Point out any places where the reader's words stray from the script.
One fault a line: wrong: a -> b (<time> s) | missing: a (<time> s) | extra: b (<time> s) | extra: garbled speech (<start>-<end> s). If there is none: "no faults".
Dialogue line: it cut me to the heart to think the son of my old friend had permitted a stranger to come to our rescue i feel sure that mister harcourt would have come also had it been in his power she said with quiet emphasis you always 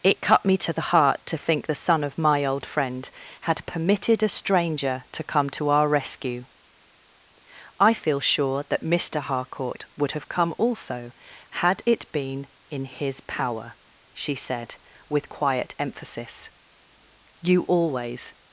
no faults